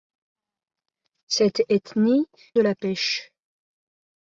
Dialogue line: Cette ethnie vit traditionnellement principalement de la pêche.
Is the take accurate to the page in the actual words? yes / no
no